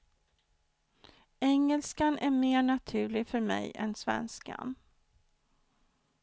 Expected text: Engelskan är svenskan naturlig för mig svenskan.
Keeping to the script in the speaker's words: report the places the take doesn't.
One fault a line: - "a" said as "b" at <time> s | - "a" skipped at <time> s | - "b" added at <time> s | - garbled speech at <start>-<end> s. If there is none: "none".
- "svenskan" said as "mer" at 2.3 s
- "än" added at 3.8 s